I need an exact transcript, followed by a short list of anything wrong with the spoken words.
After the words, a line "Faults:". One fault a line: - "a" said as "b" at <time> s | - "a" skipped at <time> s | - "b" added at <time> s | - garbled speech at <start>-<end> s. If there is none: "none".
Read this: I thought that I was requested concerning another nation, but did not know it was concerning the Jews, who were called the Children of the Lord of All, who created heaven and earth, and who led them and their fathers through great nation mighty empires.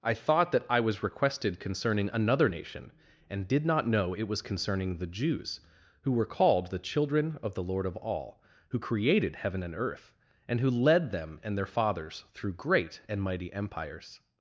I thought that I was requested concerning another nation, and did not know it was concerning the Jews, who were called the Children of the Lord of All, who created heaven and earth, and who led them and their fathers through great and mighty empires.
Faults:
- "but" said as "and" at 3.3 s
- "nation" said as "and" at 13.1 s